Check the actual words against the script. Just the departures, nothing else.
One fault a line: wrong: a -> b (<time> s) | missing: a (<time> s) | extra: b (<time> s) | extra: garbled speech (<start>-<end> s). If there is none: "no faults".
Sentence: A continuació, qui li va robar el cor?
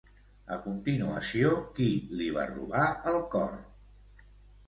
no faults